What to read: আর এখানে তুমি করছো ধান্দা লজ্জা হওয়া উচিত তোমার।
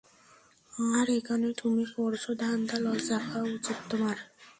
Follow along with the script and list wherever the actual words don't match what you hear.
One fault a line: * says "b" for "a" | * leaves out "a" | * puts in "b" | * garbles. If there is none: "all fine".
all fine